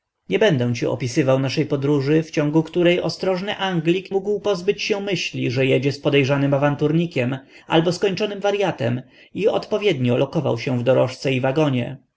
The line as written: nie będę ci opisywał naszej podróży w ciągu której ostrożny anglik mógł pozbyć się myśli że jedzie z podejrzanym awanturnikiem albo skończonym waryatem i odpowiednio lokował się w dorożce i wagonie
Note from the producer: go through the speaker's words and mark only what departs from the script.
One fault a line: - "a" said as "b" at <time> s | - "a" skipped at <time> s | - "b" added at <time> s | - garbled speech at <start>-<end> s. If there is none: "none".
none